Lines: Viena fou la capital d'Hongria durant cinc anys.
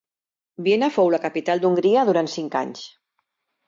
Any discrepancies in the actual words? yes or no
no